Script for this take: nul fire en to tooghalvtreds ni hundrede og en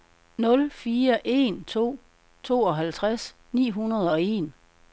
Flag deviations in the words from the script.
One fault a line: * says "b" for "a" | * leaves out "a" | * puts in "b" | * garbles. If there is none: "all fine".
all fine